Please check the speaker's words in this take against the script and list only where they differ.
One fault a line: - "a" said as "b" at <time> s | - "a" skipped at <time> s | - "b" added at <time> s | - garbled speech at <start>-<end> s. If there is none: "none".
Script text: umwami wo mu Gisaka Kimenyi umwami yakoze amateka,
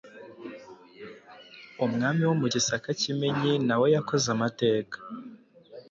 - "umwami" said as "nawe" at 3.7 s